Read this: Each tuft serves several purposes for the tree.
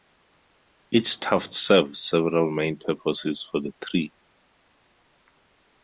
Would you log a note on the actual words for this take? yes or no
yes